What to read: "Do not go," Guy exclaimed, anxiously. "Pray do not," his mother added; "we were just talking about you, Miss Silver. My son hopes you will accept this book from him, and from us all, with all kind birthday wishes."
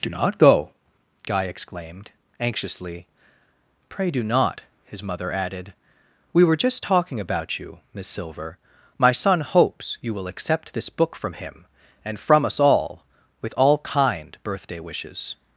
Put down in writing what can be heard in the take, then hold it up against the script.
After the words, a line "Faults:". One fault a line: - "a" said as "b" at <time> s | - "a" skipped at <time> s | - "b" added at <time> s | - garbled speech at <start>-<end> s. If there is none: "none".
"Do not go," Guy exclaimed, anxiously. "Pray do not," his mother added; "we were just talking about you, Miss Silver. My son hopes you will accept this book from him, and from us all, with all kind birthday wishes."
Faults:
none